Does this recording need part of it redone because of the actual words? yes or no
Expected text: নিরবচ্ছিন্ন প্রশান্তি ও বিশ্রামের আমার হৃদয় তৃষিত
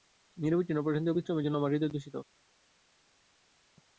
yes